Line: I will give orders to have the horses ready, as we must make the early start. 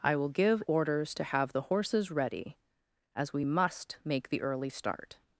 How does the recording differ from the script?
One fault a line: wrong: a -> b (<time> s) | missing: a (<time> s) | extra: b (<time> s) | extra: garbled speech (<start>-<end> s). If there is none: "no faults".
no faults